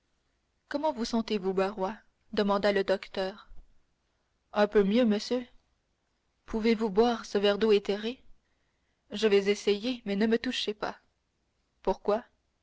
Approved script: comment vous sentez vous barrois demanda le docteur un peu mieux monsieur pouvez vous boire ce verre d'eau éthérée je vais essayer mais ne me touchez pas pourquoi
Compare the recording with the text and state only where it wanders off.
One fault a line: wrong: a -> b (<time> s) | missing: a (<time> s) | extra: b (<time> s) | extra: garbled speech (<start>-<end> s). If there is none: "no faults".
no faults